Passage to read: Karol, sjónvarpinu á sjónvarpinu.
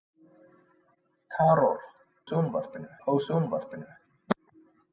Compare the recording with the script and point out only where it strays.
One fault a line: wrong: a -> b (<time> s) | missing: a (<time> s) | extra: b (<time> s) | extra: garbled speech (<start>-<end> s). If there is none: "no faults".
no faults